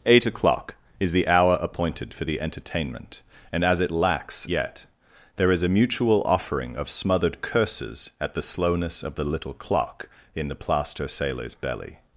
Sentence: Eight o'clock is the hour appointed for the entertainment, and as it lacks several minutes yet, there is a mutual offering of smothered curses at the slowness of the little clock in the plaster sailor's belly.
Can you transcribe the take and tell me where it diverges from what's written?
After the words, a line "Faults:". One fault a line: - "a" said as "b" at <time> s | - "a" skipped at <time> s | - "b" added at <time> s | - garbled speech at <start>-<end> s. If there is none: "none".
Eight o'clock is the hour appointed for the entertainment, and as it lacks yet, there is a mutual offering of smothered curses at the slowness of the little clock in the plaster sailor's belly.
Faults:
- "several minutes" skipped at 4.5 s